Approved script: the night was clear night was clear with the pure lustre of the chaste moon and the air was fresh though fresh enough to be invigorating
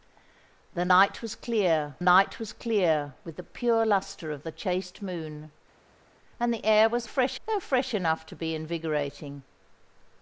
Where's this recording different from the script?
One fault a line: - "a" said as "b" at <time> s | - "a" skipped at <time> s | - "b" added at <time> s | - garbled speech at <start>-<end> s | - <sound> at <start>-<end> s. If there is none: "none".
none